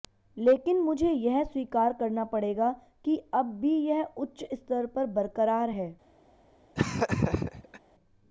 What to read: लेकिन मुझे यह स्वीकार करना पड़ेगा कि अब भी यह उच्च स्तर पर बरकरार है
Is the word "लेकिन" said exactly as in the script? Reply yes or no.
yes